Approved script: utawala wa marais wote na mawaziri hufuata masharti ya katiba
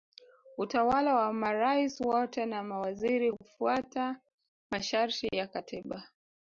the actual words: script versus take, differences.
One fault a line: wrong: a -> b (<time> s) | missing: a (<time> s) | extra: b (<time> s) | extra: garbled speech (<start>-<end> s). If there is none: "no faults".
no faults